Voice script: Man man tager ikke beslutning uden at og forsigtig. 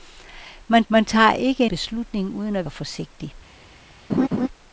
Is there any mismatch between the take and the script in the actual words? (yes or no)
no